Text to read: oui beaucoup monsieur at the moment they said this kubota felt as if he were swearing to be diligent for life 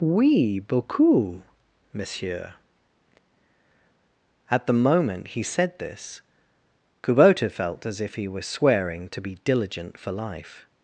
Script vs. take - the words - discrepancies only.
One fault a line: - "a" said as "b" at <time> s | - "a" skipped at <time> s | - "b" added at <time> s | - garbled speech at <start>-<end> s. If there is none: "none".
- "they" said as "he" at 5.3 s